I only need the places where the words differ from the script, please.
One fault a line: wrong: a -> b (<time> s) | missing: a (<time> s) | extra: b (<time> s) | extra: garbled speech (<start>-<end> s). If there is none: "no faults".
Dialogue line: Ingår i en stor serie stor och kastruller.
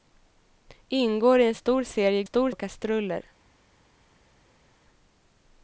no faults